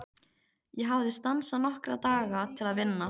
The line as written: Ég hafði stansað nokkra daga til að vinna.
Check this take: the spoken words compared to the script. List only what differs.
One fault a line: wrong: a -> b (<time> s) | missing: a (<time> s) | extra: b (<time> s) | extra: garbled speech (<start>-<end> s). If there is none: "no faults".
no faults